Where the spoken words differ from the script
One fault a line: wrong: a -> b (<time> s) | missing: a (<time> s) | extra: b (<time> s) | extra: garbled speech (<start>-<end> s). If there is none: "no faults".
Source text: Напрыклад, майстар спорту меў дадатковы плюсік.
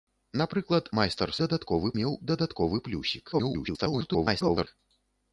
wrong: спорту -> дадатковы (1.4 s)
extra: garbled speech (3.3-4.7 s)